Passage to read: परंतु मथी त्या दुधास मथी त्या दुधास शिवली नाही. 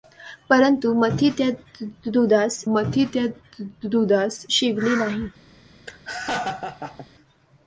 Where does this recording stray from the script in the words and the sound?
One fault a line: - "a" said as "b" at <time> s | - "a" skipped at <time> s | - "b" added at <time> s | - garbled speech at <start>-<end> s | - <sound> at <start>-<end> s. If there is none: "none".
- laugh at 5.9-7.1 s